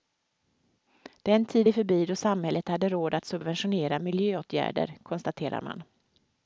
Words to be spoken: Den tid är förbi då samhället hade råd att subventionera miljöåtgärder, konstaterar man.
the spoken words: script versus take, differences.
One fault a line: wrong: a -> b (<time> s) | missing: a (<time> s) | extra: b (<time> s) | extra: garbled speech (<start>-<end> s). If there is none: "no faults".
no faults